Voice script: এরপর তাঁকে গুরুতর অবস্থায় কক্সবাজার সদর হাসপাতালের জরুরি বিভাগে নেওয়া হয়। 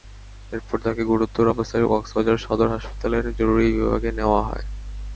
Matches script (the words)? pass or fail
pass